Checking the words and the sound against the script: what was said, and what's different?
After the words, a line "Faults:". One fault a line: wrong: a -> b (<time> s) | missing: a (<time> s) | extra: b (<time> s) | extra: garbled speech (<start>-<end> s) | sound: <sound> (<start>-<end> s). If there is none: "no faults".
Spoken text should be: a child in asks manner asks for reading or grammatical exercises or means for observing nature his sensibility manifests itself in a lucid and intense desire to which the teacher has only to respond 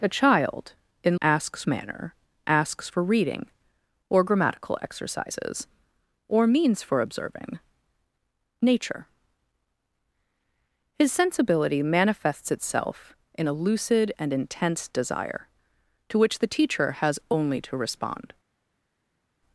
a child in asks manner asks for reading or grammatical exercises or means for observing nature his sensibility manifests itself in a lucid and intense desire to which the teacher has only to respond
Faults:
no faults